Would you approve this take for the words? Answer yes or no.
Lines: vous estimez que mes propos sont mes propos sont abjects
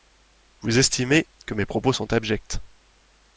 no